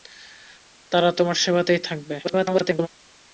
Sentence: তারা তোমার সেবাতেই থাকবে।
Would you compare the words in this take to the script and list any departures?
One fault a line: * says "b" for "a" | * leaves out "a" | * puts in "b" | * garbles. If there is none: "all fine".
* garbles